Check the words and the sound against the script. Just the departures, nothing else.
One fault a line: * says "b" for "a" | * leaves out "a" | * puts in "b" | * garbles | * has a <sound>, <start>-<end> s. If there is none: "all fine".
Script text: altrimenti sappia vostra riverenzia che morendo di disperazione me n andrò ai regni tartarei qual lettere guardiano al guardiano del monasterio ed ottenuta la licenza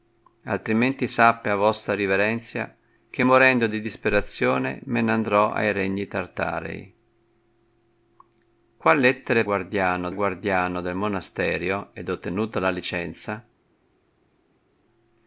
all fine